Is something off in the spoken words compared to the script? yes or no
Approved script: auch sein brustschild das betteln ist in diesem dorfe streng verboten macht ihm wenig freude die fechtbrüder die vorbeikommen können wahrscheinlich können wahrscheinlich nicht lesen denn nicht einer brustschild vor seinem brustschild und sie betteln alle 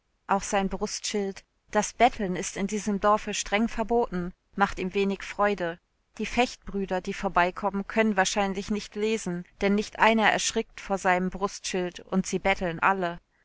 yes